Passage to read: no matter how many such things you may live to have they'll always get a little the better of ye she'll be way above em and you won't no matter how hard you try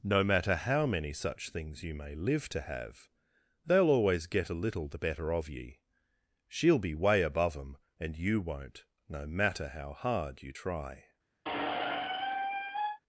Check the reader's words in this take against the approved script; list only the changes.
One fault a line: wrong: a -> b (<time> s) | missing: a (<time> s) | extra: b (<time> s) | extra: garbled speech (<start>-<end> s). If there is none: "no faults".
no faults